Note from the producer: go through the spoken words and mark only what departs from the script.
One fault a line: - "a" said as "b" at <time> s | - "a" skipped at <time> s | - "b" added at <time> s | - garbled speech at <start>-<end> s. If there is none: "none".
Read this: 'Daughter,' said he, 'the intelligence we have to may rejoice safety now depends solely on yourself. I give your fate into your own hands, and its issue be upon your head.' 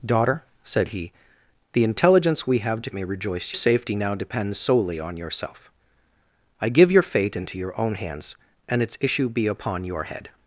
none